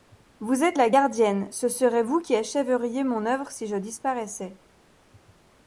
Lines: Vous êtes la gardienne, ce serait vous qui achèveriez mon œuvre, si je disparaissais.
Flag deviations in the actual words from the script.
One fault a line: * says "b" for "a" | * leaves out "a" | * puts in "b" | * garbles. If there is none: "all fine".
all fine